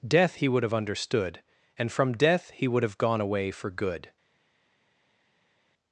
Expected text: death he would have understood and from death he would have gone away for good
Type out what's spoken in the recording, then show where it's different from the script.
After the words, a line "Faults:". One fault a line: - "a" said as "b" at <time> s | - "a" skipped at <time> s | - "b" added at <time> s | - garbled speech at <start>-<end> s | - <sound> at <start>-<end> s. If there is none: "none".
death he would have understood and from death he would have gone away for good
Faults:
none